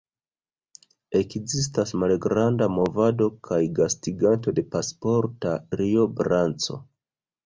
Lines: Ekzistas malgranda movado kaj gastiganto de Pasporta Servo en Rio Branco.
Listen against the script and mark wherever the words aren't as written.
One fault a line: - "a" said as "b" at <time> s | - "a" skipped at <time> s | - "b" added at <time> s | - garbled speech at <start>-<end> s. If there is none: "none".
- "Servo en" skipped at 5.5 s